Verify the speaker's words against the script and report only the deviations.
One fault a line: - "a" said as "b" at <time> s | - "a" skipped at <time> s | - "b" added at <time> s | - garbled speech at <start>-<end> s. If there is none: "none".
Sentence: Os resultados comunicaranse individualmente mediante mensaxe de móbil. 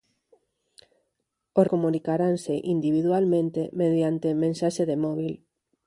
- "resultados" skipped at 1.6 s